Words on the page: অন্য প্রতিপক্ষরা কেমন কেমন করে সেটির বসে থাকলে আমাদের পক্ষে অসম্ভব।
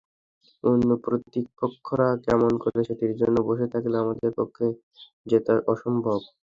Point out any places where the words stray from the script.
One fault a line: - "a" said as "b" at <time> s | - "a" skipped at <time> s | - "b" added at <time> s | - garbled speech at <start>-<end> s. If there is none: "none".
- "কেমন" skipped at 2.5 s
- "জন্য" added at 3.2 s
- "জেতা" added at 5.3 s